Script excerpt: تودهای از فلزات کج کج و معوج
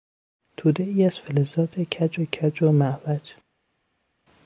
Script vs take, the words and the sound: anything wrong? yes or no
no